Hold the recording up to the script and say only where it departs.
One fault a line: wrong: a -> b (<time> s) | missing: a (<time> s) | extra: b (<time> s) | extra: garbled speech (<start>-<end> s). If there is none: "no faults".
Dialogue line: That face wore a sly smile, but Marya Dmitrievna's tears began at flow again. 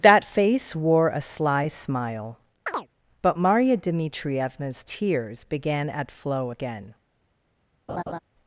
no faults